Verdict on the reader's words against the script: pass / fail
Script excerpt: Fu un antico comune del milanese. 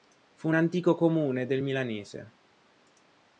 pass